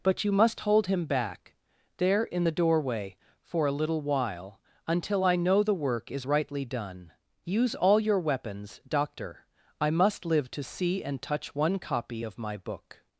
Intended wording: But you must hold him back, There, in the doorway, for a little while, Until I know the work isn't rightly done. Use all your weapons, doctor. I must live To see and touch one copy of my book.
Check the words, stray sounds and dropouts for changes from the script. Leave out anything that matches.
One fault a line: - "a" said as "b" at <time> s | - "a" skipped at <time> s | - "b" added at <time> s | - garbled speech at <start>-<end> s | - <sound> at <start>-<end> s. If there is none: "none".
- "isn't" said as "is" at 6.1 s